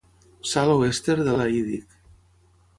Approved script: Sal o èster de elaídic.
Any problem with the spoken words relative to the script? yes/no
no